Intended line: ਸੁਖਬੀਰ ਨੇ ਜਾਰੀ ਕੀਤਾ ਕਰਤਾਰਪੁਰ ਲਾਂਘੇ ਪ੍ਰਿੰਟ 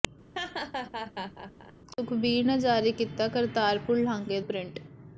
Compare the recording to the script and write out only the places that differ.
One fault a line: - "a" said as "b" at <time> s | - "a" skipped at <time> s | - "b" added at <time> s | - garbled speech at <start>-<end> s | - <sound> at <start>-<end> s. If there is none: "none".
- laugh at 0.3-1.7 s